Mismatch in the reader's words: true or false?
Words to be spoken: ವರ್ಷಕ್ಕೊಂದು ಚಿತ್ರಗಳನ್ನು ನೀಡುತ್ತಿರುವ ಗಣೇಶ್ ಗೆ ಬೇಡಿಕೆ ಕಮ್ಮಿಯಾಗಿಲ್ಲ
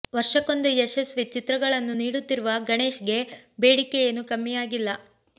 true